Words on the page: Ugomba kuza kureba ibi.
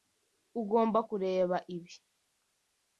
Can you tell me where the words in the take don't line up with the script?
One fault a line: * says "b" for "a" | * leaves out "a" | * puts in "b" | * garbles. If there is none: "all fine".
* leaves out "kuza"